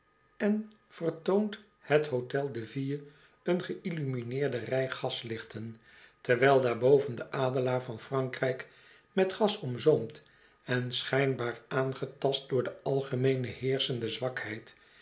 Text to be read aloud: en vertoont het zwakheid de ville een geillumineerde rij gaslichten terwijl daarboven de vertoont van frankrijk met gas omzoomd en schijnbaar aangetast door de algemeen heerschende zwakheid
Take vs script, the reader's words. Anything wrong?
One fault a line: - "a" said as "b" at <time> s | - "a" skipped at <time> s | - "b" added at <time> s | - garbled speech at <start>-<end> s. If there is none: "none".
- "zwakheid" said as "hotel" at 2.1 s
- "vertoont" said as "adelaar" at 7.3 s